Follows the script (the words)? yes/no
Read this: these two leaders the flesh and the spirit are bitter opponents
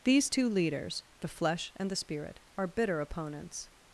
yes